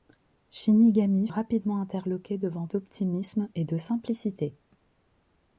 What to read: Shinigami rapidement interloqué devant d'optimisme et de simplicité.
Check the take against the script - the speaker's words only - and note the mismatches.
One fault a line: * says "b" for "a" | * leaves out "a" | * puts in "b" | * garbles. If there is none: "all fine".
all fine